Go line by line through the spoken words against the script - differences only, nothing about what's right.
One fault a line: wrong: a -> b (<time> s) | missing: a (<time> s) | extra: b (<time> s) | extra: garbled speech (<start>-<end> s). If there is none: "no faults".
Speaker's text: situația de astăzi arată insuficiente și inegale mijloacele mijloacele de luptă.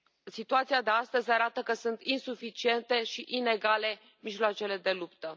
extra: că sunt (1.6 s)
missing: mijloacele (4.8 s)